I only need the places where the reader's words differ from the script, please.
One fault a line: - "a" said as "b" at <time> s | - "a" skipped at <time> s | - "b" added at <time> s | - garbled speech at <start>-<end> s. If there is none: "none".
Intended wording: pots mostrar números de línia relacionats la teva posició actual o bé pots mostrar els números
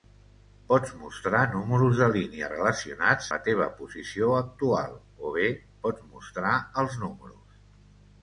none